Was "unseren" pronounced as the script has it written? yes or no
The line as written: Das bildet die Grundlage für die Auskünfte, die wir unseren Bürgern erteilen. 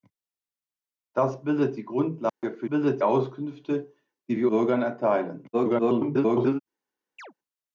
no